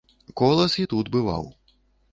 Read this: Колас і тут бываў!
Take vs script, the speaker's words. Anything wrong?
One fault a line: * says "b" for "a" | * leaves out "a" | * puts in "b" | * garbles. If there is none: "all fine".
all fine